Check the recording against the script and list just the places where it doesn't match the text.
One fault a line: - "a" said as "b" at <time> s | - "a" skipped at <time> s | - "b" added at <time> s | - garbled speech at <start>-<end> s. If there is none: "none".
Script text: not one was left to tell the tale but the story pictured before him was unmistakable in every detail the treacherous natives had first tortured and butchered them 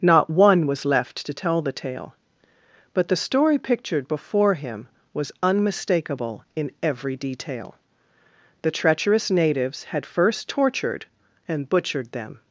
none